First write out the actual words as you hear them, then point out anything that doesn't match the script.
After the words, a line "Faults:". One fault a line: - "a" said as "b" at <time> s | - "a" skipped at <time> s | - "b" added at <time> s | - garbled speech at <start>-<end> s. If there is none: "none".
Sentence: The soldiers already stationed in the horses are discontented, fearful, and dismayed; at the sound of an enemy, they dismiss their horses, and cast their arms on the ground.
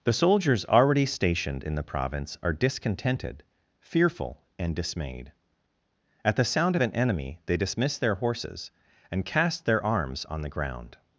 The soldiers already stationed in the province are discontented, fearful, and dismayed; at the sound of an enemy, they dismiss their horses, and cast their arms on the ground.
Faults:
- "horses" said as "province" at 1.8 s